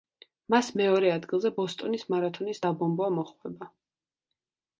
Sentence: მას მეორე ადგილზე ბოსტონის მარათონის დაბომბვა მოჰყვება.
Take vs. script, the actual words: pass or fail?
pass